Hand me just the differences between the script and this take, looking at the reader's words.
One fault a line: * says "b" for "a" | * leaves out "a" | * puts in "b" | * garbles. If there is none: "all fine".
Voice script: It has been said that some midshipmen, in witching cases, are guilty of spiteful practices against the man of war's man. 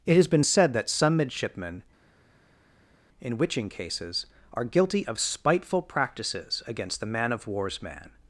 all fine